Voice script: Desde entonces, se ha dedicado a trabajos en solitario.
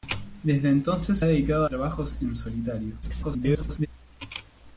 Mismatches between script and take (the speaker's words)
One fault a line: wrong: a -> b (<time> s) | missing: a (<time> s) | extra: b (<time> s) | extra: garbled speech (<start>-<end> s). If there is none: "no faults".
missing: se (1.2 s)
missing: a (1.7 s)
extra: garbled speech (3.0-3.9 s)